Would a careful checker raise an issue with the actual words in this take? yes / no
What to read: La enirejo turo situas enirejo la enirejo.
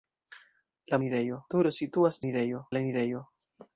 no